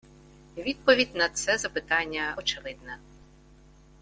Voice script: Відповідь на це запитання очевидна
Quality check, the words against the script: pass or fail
pass